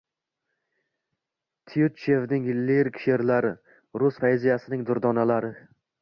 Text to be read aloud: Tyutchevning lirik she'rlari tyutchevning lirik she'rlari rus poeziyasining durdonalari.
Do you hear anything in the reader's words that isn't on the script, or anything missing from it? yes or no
yes